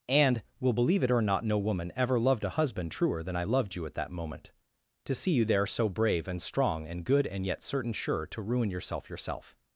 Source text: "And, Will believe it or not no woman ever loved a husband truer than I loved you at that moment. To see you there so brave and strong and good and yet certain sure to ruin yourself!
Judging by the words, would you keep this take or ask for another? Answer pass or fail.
fail